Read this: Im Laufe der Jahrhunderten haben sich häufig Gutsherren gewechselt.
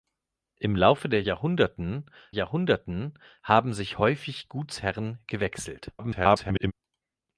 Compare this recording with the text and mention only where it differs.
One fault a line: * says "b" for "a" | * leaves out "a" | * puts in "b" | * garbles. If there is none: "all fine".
* puts in "Jahrhunderten"
* garbles